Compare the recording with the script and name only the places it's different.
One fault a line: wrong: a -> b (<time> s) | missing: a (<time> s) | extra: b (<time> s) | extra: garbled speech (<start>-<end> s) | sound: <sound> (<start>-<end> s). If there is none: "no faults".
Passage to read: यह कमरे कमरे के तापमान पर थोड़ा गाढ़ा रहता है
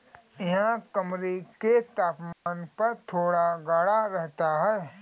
missing: कमरे (1.4 s)
sound: dropout (2.3-2.5 s)